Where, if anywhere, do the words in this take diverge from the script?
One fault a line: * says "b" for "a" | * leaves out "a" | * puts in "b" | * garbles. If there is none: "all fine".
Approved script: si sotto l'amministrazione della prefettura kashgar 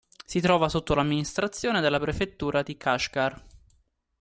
* puts in "trova"
* puts in "di"